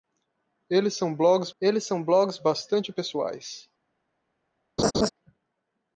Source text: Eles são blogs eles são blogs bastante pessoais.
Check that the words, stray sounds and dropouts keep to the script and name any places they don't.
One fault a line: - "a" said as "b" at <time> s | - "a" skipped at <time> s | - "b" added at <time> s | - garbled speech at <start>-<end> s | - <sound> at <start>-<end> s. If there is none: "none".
- laugh at 4.8-5.1 s